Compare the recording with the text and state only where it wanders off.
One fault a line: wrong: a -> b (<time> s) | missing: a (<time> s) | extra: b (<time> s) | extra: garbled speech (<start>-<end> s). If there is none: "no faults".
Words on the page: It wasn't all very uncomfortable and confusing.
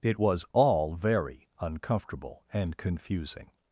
wrong: wasn't -> was (0.2 s)